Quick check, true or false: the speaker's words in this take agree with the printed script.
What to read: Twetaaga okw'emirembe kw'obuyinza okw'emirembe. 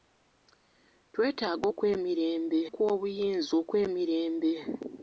true